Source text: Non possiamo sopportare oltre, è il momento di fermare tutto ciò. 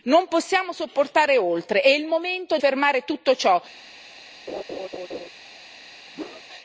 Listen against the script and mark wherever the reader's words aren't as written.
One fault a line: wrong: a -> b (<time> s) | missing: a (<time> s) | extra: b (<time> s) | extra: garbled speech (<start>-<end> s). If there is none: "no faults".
missing: di (2.6 s)